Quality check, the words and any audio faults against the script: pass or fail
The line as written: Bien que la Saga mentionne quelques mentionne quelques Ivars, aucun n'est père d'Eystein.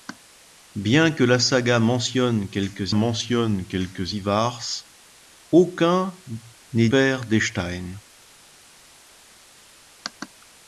pass